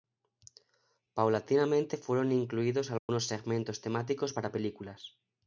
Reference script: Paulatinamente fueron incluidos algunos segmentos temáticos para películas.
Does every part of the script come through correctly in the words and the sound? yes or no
no